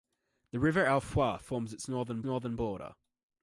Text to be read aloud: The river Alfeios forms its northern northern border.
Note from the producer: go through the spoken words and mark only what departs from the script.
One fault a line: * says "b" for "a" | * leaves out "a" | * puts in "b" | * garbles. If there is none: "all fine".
all fine